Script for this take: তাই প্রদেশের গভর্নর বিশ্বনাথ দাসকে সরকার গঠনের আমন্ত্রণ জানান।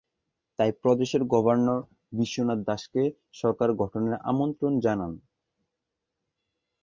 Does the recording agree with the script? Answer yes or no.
yes